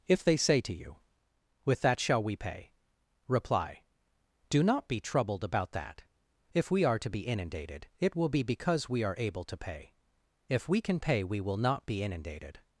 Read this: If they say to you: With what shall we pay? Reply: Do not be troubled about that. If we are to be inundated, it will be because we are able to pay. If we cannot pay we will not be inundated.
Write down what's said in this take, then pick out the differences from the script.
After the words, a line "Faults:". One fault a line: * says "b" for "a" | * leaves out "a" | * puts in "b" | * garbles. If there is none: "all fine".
If they say to you: With that shall we pay? Reply: Do not be troubled about that. If we are to be inundated, it will be because we are able to pay. If we can pay we will not be inundated.
Faults:
* says "that" for "what"
* says "can" for "cannot"